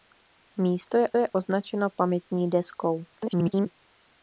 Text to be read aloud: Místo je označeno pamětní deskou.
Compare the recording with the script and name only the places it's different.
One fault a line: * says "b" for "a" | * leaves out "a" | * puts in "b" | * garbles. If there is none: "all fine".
* puts in "je"
* garbles